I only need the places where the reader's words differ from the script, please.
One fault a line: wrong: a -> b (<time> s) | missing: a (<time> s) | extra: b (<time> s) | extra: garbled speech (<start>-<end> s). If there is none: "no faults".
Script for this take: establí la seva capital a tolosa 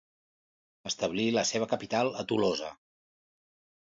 no faults